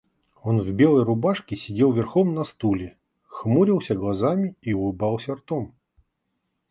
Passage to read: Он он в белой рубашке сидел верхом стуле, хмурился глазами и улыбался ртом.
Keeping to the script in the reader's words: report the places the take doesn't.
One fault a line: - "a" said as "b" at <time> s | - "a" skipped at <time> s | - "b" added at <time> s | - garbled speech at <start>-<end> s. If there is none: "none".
- "он" skipped at 0.6 s
- "на" added at 2.3 s